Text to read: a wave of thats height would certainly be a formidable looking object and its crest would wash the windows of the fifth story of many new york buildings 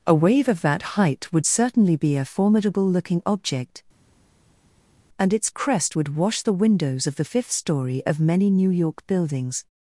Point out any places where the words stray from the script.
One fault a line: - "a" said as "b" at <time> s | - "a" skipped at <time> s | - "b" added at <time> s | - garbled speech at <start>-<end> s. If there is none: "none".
- "thats" said as "that" at 0.6 s